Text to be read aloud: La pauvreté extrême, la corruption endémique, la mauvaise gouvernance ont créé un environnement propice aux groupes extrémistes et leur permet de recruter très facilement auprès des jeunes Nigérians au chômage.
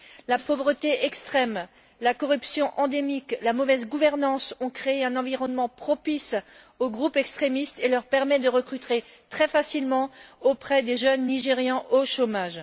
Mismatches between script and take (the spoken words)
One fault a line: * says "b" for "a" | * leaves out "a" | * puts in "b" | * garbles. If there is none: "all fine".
all fine